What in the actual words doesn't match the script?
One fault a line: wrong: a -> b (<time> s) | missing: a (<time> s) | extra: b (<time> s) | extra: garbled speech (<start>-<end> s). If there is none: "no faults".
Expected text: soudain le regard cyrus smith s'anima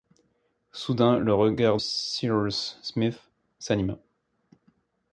no faults